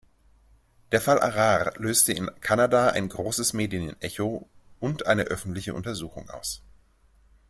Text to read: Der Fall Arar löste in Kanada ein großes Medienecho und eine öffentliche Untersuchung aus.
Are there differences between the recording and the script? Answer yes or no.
no